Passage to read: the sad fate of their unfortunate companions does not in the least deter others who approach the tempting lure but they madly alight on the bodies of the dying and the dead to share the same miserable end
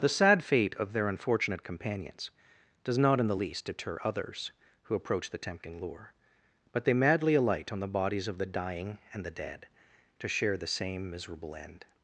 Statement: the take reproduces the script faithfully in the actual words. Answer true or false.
true